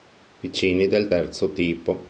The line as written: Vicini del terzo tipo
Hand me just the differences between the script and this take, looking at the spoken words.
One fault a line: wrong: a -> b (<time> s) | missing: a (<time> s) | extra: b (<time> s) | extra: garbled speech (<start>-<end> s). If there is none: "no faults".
no faults